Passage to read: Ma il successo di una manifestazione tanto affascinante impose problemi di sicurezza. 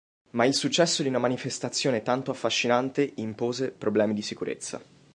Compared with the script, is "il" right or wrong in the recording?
right